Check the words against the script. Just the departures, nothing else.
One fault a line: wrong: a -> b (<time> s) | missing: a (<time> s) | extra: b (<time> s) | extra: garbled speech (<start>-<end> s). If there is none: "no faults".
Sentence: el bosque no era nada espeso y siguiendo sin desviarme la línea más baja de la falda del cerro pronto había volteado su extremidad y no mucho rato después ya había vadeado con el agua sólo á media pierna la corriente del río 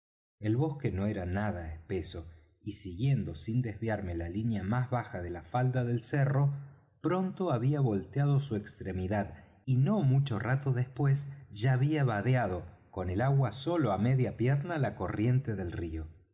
no faults